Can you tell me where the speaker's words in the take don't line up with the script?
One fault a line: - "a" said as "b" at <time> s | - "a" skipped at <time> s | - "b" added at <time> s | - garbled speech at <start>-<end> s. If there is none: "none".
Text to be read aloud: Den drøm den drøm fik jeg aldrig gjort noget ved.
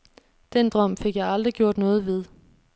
- "den drøm" skipped at 1.0 s